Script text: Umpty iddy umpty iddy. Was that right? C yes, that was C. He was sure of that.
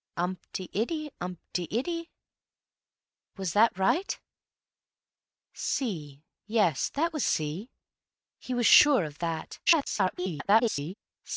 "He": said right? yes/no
yes